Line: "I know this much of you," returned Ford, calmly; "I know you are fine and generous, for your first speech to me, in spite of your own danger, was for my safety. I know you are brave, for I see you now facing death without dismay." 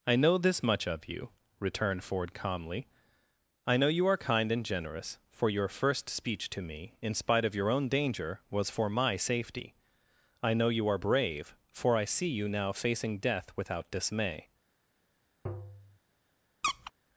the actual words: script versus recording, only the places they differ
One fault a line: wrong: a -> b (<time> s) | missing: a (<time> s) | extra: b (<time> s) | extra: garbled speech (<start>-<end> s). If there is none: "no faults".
wrong: fine -> kind (4.2 s)